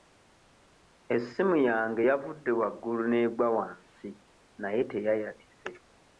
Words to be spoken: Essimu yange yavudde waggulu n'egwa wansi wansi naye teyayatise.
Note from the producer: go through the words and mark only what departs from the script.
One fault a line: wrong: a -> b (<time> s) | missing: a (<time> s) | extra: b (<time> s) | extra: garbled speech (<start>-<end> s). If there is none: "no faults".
missing: wansi (4.1 s)